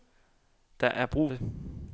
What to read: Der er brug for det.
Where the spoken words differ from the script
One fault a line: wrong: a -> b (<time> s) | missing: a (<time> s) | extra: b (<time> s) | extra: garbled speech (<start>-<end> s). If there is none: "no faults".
missing: for (1.3 s)